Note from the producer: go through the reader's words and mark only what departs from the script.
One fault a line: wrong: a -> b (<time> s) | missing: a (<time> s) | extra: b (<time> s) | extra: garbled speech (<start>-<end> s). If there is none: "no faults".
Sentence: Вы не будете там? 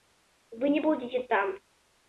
no faults